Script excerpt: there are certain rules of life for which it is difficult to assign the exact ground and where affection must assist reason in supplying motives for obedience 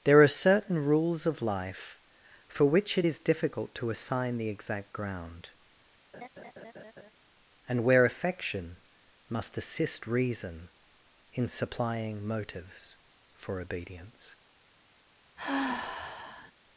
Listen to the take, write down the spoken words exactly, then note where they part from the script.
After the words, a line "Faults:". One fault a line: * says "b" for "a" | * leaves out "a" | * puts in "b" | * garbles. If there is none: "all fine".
there are certain rules of life for which it is difficult to assign the exact ground and where affection must assist reason in supplying motives for obedience
Faults:
all fine